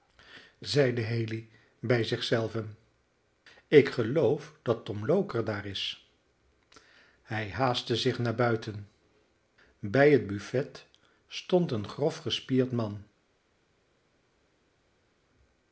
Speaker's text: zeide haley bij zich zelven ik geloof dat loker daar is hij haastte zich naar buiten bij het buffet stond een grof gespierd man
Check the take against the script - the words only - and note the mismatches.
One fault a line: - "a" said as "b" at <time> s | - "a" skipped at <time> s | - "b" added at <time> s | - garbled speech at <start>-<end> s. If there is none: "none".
- "tom" added at 4.8 s